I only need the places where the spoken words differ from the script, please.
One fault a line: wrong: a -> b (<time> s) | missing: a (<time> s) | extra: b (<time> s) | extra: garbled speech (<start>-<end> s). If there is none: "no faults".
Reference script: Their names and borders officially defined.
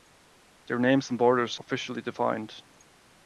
no faults